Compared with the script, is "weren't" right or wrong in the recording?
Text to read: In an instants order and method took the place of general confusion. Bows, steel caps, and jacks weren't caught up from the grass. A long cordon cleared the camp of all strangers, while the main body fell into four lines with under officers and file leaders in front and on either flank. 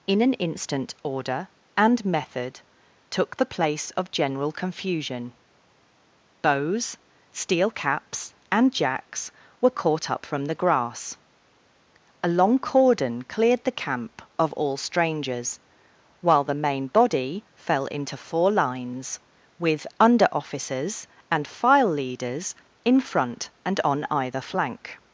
wrong